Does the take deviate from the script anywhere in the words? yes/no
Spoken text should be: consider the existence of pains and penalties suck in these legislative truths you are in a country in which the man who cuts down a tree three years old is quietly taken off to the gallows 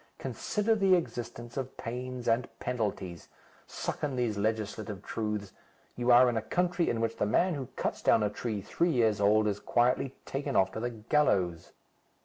no